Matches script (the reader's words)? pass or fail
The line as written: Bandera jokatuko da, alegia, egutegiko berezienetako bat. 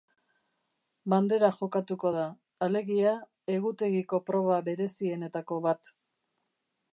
fail